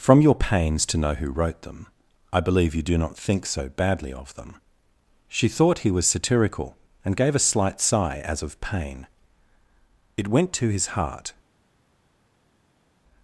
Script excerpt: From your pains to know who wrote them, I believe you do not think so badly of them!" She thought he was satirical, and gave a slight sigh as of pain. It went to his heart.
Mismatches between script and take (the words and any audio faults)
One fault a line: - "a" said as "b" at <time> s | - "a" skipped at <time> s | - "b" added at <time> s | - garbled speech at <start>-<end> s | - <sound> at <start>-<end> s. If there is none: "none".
none